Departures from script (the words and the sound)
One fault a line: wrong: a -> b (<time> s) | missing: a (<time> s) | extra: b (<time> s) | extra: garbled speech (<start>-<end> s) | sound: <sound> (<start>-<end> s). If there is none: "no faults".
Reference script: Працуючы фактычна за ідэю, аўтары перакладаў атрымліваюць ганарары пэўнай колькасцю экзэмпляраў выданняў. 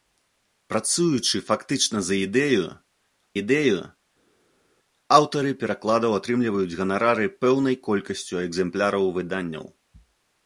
extra: ідэю (3.4 s)